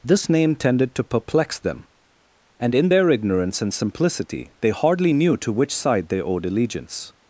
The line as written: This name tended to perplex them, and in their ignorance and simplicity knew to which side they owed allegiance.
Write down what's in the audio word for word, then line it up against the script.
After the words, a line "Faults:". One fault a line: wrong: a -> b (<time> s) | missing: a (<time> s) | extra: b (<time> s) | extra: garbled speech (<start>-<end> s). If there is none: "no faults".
This name tended to perplex them, and in their ignorance and simplicity they hardly knew to which side they owed allegiance.
Faults:
extra: they hardly (4.6 s)